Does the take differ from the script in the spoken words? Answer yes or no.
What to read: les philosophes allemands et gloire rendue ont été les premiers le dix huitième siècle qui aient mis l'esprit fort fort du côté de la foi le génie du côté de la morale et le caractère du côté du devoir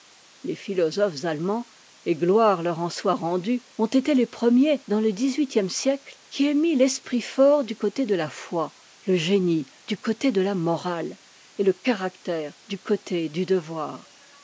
yes